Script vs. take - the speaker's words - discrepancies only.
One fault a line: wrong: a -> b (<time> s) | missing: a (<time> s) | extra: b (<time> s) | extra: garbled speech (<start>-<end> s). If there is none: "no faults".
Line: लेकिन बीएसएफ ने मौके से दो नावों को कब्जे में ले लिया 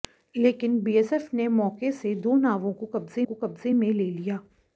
extra: को कब्जे (3.2 s)